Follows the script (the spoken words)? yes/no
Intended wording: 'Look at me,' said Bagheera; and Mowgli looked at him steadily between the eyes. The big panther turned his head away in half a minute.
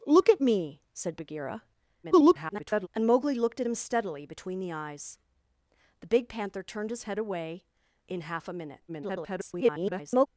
no